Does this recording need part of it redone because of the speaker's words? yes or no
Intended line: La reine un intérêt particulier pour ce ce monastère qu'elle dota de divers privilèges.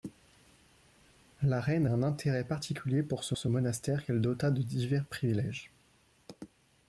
no